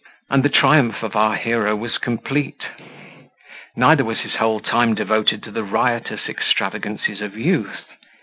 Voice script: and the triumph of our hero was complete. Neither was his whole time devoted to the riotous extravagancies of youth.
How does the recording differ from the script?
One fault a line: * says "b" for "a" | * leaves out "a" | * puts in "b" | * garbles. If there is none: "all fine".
all fine